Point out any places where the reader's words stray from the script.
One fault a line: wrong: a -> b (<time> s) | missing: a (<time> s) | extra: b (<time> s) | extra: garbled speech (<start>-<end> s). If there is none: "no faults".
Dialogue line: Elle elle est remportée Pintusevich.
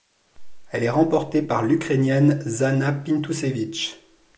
missing: elle (0.8 s)
extra: par l'Ukrainienne Zhanna (1.4 s)